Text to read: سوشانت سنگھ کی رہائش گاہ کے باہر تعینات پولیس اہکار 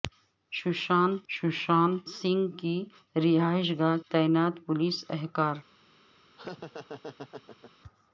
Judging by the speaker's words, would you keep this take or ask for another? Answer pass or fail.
fail